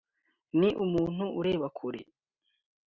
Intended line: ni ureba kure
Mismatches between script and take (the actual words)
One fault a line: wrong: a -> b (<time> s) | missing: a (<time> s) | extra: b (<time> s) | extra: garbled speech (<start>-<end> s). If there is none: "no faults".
extra: umuntu (0.8 s)